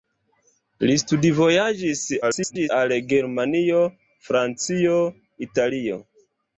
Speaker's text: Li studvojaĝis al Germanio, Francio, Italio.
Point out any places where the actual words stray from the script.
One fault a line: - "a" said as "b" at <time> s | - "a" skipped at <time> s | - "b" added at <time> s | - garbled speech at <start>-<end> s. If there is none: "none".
- garbled speech at 2.2-2.7 s